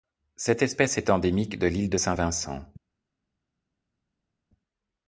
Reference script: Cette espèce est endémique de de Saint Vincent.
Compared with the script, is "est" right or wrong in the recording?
right